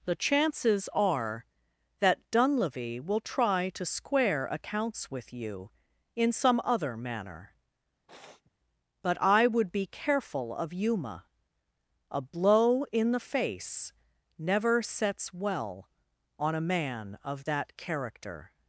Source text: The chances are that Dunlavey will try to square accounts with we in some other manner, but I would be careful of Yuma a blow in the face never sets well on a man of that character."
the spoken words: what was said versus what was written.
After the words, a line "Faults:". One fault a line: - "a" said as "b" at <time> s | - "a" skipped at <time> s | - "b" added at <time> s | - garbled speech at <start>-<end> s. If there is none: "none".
The chances are that Dunlavey will try to square accounts with you in some other manner, but I would be careful of Yuma a blow in the face never sets well on a man of that character."
Faults:
- "we" said as "you" at 5.3 s